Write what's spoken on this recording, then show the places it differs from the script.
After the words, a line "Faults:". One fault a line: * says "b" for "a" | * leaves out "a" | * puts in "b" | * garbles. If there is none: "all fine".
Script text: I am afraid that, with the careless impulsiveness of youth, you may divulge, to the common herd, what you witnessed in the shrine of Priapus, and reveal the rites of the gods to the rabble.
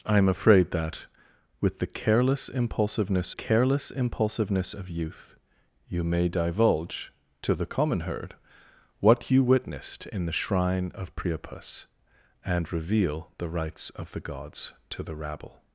I am afraid that, with the careless impulsiveness careless impulsiveness of youth, you may divulge, to the common herd, what you witnessed in the shrine of Priapus, and reveal the rites of the gods to the rabble.
Faults:
* puts in "careless impulsiveness"